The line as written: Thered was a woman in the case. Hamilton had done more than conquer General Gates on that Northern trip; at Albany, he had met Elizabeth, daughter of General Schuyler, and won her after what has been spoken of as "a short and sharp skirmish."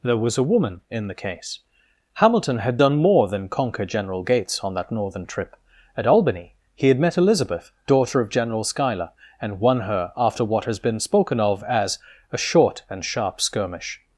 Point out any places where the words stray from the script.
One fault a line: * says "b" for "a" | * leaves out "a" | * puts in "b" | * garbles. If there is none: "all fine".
* says "There" for "Thered"